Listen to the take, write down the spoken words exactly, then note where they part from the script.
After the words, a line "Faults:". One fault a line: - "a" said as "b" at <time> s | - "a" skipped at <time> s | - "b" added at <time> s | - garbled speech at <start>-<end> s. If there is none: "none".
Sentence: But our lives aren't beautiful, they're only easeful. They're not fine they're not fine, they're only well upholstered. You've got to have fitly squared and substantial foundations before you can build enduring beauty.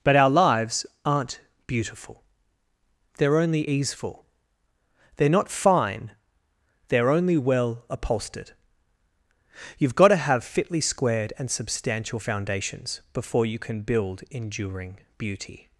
But our lives aren't beautiful, they're only easeful. They're not fine, they're only well upholstered. You've got to have fitly squared and substantial foundations before you can build enduring beauty.
Faults:
- "not fine they're" skipped at 7.1 s